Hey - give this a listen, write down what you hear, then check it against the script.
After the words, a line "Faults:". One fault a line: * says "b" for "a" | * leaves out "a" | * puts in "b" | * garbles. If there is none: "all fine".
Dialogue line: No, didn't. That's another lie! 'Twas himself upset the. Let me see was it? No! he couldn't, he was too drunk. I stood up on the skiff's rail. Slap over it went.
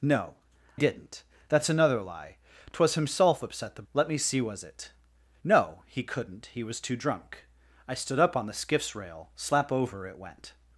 No, didn't. That's another lie! 'Twas himself upset the. Let me see was it? No! he couldn't, he was too drunk. I stood up on the skiff's rail. Slap over it went.
Faults:
all fine